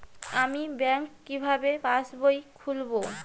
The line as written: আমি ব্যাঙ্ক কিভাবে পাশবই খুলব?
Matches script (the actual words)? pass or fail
pass